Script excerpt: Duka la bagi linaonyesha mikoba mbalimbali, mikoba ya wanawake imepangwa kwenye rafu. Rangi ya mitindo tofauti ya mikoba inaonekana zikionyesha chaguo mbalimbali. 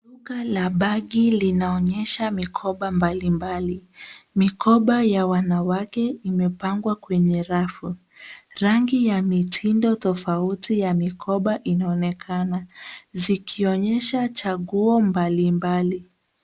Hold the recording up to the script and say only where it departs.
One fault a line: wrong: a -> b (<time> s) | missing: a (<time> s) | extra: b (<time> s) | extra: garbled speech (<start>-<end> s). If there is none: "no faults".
no faults